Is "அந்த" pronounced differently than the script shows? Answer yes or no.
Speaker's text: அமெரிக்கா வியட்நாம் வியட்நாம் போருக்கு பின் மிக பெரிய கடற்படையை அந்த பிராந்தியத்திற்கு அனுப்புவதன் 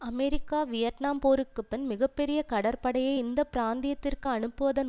yes